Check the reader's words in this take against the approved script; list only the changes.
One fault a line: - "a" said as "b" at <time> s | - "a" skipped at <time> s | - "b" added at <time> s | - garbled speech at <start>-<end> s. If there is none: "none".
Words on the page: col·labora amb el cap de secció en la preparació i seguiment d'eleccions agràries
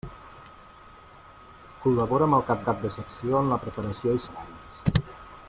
- "cap" added at 2.7 s
- "seguiment d'eleccions" skipped at 4.3 s